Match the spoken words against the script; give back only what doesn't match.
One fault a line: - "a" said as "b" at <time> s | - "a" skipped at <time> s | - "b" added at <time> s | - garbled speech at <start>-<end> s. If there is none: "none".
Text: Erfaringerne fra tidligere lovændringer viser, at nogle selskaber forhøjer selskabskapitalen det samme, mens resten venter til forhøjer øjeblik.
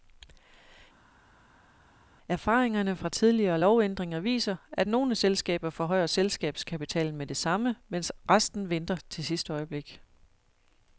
- "med" added at 7.2 s
- "forhøjer" said as "sidste" at 9.2 s